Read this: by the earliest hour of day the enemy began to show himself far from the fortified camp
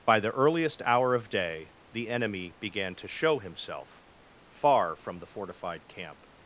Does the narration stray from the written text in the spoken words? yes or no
no